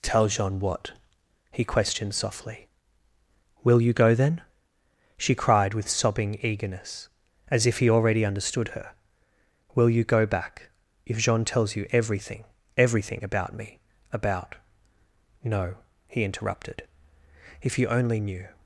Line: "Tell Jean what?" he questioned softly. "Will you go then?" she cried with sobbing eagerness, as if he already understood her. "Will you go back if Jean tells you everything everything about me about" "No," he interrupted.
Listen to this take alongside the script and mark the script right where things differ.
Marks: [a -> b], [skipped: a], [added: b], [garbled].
"Tell Jean what?" he questioned softly. "Will you go then?" she cried with sobbing eagerness, as if he already understood her. "Will you go back if Jean tells you everything everything about me about" "No," he interrupted. [added: If you only knew]